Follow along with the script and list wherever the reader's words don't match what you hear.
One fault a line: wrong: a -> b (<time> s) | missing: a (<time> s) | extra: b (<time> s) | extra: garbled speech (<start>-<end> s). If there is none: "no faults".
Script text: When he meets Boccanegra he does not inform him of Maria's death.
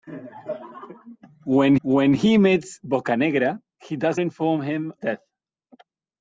extra: when (1.8 s)
missing: not (4.2 s)
missing: of Maria's (4.9 s)